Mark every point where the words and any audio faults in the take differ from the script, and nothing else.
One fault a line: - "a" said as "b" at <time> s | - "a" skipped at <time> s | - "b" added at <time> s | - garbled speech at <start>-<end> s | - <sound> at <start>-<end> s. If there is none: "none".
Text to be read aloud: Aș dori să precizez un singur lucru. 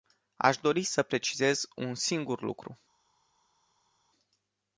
none